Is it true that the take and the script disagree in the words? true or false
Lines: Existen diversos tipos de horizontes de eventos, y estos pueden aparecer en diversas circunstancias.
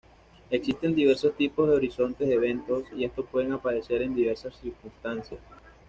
false